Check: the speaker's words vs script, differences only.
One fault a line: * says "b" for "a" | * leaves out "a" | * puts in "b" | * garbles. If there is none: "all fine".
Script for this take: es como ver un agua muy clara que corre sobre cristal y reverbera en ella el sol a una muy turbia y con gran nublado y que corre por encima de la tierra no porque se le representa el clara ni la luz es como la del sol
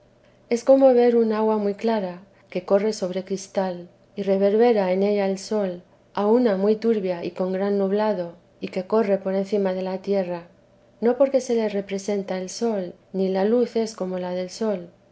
* says "sol" for "clara"